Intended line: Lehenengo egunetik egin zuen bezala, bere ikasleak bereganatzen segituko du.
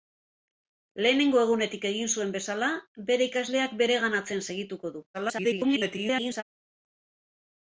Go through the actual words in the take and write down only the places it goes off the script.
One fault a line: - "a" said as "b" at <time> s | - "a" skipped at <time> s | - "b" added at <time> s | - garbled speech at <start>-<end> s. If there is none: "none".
- garbled speech at 5.1-6.4 s